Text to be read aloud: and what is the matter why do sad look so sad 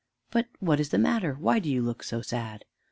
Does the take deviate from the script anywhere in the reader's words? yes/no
yes